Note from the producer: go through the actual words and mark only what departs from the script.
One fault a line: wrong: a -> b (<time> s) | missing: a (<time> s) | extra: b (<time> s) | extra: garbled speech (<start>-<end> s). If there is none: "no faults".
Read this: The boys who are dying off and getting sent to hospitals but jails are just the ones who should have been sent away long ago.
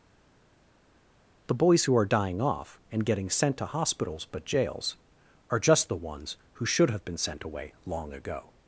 no faults